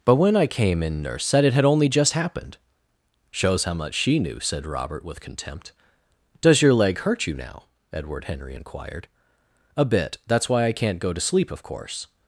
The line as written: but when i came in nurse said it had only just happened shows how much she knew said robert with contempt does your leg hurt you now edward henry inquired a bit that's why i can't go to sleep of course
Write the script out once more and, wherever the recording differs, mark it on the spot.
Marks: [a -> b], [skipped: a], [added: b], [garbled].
but when i came in nurse said it had only just happened shows how much she knew said robert with contempt does your leg hurt you now edward henry inquired a bit that's why i can't go to sleep of course